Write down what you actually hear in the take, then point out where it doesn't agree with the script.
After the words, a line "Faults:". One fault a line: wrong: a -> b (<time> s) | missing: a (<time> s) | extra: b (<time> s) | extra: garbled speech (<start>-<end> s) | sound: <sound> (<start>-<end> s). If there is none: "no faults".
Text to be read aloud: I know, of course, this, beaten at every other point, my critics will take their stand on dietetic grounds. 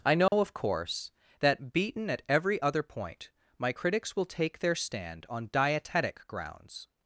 I know, of course, that, beaten at every other point, my critics will take their stand on dietetic grounds.
Faults:
sound: dropout (0.3-0.3 s)
wrong: this -> that (1.4 s)